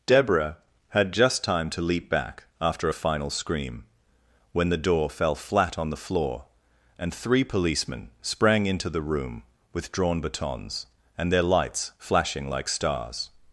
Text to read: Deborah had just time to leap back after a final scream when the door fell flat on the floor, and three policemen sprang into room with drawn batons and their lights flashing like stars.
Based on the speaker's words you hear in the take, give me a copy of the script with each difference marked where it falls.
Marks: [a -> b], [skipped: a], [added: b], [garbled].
Deborah had just time to leap back after a final scream when the door fell flat on the floor, and three policemen sprang into [added: the] room with drawn batons and their lights flashing like stars.